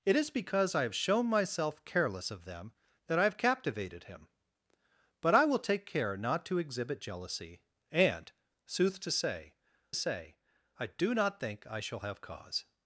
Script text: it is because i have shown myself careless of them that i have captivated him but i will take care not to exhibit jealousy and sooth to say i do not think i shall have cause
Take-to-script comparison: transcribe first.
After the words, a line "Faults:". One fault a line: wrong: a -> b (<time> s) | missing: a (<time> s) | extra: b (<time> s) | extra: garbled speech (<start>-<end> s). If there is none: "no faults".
it is because i have shown myself careless of them that i have captivated him but i will take care not to exhibit jealousy and sooth to say say i do not think i shall have cause
Faults:
extra: say (9.9 s)